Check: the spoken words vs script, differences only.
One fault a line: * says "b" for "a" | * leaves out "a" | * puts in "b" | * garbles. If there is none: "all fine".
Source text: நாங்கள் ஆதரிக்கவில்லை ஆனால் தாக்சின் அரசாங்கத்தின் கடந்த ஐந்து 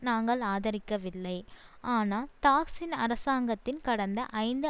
all fine